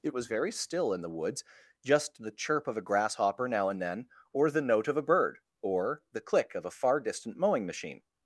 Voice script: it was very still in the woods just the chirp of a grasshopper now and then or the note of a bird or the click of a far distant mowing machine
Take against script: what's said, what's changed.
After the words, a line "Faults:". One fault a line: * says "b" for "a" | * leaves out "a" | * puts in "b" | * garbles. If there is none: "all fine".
it was very still in the woods just the chirp of a grasshopper now and then or the note of a bird or the click of a far distant mowing machine
Faults:
all fine